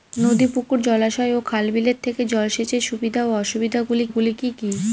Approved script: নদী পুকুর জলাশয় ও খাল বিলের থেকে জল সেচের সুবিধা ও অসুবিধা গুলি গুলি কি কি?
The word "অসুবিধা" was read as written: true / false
true